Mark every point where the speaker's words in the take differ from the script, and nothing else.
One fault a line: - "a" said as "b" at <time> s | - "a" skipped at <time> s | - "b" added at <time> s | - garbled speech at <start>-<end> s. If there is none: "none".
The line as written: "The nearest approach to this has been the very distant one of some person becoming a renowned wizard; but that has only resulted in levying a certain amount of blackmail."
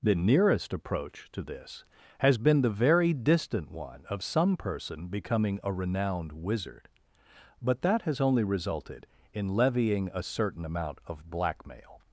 none